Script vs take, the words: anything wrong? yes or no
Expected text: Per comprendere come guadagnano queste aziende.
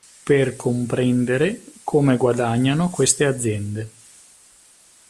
no